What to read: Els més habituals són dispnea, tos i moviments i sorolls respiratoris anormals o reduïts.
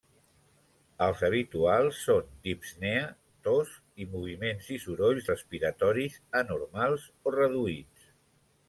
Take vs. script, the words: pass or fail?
fail